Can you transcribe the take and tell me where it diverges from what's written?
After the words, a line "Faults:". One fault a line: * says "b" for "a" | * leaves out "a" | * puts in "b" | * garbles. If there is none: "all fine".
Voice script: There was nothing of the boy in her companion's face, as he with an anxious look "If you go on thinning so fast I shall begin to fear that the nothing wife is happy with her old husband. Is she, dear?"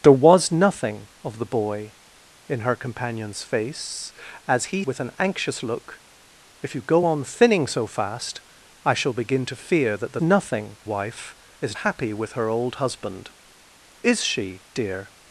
There was nothing of the boy in her companion's face, as he with an anxious look "If you go on thinning so fast I shall begin to fear that the nothing wife is happy with her old husband. Is she, dear?"
Faults:
all fine